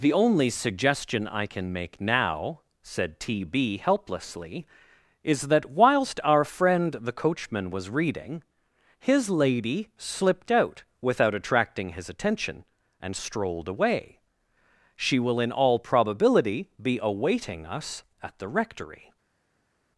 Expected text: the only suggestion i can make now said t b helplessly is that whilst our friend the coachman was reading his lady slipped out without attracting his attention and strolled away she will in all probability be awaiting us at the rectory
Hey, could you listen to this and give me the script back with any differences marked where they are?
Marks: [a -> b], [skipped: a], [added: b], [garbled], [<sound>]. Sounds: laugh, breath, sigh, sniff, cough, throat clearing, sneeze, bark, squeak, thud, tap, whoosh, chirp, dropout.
the only suggestion i can make now said t b helplessly is that whilst our friend the coachman was reading his lady slipped out without attracting his attention and strolled away she will in all probability be awaiting us at the rectory